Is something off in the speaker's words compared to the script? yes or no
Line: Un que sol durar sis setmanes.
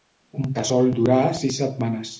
no